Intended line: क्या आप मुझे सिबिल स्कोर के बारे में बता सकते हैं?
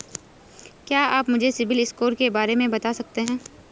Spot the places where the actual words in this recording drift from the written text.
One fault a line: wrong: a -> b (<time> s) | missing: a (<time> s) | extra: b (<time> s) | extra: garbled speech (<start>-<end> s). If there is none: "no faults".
no faults